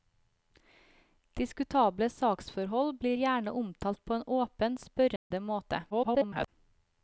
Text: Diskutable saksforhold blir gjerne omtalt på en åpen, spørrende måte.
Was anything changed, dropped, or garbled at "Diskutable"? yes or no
no